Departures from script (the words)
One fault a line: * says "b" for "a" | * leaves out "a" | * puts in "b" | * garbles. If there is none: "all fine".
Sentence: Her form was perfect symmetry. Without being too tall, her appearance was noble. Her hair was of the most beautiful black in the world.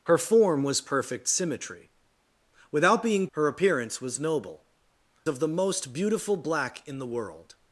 * leaves out "too tall"
* leaves out "Her hair was"